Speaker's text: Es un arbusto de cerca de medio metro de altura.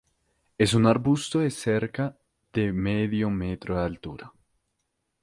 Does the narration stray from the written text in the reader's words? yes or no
no